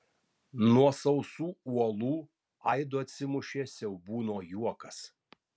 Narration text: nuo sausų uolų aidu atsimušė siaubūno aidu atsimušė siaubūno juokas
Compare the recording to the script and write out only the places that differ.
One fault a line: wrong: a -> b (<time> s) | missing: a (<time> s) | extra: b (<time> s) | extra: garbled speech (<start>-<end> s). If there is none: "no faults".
missing: aidu atsimušė siaubūno (4.4 s)